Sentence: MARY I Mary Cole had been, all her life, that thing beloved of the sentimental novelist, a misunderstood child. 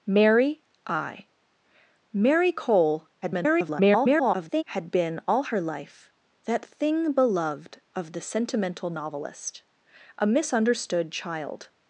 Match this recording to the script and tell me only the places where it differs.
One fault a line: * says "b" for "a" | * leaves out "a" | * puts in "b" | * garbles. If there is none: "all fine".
* garbles